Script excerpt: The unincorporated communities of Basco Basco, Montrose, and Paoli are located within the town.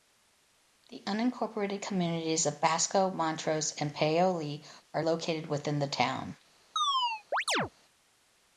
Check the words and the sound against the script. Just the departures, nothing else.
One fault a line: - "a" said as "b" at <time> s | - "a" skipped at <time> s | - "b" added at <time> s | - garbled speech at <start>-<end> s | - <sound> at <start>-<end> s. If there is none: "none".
- "Basco" skipped at 3.1 s
- chirp at 6.8-7.7 s